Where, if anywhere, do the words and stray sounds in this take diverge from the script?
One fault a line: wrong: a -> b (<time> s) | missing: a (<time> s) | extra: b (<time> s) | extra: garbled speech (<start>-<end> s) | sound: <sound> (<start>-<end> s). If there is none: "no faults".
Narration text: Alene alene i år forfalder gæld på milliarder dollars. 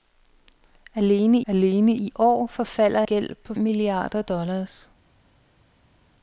no faults